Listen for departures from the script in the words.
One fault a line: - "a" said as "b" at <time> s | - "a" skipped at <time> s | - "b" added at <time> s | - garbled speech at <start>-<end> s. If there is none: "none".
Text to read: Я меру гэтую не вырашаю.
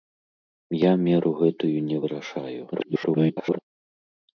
- garbled speech at 2.7-3.6 s